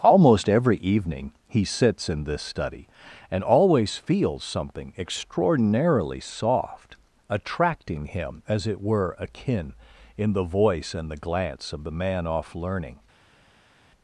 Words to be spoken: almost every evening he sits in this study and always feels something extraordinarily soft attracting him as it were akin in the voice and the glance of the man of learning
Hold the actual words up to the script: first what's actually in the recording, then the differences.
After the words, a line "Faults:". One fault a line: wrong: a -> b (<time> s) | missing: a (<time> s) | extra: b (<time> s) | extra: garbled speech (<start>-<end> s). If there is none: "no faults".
almost every evening he sits in this study and always feels something extraordinarily soft attracting him as it were akin in the voice and the glance of the man off learning
Faults:
wrong: of -> off (12.2 s)